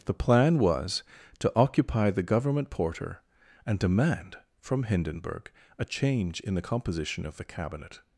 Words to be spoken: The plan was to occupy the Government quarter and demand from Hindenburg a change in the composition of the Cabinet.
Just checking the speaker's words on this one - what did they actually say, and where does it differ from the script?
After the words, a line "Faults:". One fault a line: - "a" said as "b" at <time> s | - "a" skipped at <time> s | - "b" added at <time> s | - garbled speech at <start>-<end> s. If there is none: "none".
The plan was to occupy the Government porter and demand from Hindenburg a change in the composition of the Cabinet.
Faults:
- "quarter" said as "porter" at 2.7 s